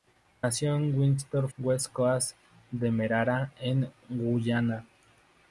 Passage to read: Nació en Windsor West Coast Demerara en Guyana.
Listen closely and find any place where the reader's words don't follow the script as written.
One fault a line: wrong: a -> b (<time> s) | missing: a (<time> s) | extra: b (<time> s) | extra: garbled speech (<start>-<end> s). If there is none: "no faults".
no faults